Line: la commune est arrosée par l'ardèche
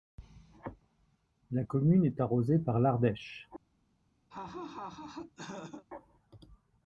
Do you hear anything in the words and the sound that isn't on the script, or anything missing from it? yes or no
yes